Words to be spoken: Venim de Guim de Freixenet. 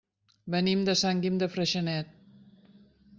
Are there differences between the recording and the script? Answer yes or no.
yes